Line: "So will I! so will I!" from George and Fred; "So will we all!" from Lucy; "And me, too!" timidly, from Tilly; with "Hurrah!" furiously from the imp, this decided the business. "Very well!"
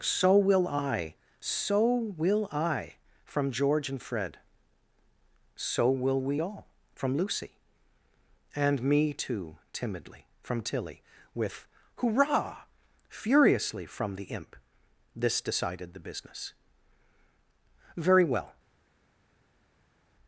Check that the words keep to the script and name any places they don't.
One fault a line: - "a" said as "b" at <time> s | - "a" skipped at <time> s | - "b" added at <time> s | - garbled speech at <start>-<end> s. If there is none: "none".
none